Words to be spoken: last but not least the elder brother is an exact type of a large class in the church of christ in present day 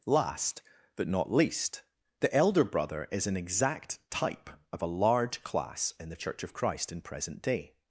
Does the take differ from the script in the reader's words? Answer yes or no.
no